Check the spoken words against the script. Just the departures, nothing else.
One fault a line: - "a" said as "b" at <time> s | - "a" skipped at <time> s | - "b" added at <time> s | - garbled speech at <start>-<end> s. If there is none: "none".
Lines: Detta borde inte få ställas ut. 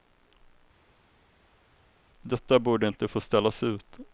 none